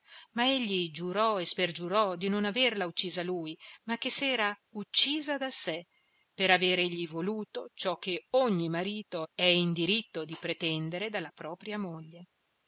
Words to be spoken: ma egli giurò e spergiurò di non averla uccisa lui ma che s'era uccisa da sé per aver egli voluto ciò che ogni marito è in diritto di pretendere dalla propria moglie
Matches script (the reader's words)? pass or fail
pass